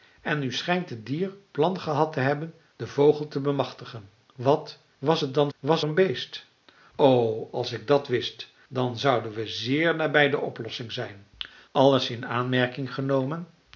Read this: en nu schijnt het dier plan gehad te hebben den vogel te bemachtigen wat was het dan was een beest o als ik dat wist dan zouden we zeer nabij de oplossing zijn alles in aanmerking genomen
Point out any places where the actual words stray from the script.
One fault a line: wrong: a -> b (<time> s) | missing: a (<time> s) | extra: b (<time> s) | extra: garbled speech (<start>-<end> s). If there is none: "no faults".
no faults